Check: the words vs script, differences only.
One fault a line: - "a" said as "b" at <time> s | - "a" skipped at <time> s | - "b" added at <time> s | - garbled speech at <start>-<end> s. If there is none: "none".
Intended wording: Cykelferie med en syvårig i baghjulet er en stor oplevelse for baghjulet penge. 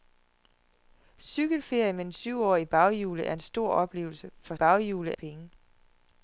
none